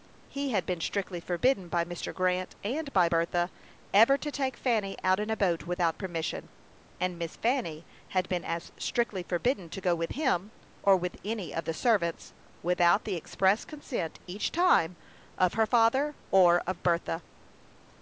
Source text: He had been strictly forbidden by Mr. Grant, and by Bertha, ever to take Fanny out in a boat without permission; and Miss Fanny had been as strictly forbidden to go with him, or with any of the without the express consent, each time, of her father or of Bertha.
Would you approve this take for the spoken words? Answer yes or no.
no